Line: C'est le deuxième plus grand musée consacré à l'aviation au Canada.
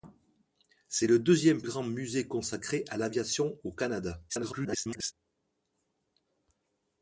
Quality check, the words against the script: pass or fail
fail